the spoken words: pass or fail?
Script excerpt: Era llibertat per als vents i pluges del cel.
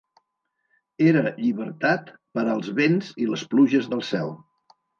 fail